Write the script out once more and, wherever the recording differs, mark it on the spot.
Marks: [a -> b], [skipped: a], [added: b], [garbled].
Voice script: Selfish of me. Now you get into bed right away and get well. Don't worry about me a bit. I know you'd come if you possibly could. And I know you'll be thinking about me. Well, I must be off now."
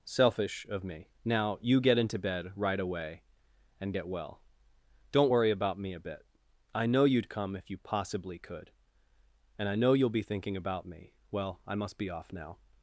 Selfish of me. Now you get into bed right away and get well. Don't worry about me a bit. I know you'd come if you possibly could. And I know you'll be thinking about me. Well, I must be off now."